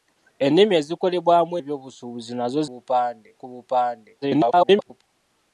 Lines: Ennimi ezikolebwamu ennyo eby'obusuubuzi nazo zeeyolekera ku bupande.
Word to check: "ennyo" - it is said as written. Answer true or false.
false